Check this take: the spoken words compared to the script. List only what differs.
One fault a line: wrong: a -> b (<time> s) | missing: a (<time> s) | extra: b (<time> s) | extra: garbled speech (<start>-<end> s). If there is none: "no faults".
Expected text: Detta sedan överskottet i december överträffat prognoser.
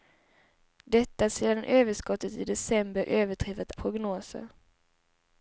no faults